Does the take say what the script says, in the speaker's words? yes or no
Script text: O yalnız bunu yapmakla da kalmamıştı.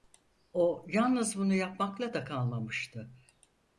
yes